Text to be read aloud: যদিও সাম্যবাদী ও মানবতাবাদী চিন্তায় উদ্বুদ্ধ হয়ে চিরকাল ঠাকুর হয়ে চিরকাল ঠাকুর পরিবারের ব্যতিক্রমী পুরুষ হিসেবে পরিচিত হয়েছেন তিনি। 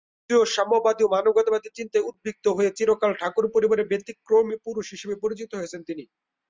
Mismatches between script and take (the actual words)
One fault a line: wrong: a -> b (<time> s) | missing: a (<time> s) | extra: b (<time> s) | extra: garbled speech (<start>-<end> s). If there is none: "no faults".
missing: হয়ে চিরকাল ঠাকুর (3.5 s)